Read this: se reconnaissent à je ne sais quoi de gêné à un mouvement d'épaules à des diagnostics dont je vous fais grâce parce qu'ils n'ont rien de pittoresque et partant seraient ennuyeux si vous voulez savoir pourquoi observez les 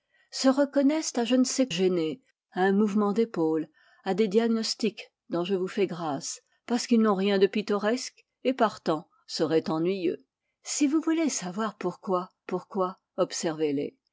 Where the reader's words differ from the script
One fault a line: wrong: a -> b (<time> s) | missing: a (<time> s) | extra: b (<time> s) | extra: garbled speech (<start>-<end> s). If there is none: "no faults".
missing: quoi de (1.7 s)
extra: pourquoi (12.5 s)